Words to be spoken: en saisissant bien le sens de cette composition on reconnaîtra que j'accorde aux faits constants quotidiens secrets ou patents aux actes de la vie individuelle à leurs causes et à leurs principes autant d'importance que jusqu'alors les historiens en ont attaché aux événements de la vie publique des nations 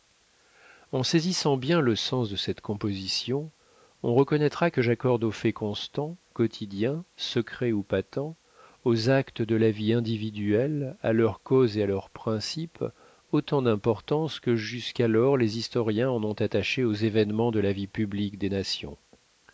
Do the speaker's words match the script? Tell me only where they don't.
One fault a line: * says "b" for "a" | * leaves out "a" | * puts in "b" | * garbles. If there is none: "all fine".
all fine